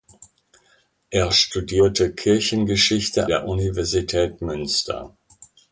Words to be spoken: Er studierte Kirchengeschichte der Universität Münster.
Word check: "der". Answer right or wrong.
right